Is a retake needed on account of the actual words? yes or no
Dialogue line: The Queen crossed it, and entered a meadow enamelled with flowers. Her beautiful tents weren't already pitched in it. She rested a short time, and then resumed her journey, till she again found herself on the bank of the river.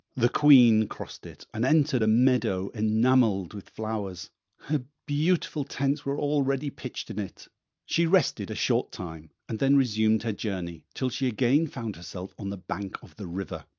yes